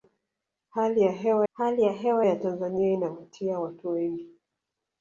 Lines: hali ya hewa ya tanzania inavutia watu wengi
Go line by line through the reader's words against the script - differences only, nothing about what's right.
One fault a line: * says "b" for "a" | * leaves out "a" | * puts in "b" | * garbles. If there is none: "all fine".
* puts in "hali ya hewa"